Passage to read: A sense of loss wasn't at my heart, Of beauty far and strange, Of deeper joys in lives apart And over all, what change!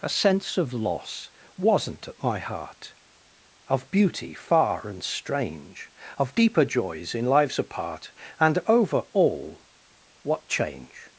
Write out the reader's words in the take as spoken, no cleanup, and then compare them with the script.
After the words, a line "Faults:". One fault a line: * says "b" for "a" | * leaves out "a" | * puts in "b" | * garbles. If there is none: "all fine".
A sense of loss wasn't at my heart, Of beauty far and strange, Of deeper joys in lives apart And over all, what change!
Faults:
all fine